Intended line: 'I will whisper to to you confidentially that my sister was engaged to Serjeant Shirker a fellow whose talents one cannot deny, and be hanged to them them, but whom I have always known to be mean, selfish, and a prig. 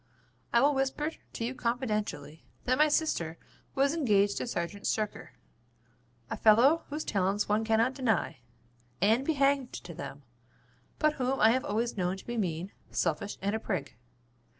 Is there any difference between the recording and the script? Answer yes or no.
yes